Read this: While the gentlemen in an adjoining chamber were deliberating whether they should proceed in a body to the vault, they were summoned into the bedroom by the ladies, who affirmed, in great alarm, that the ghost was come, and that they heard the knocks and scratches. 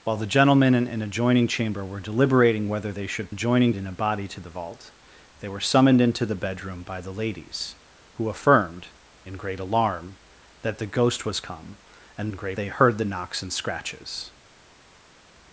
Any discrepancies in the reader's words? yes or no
yes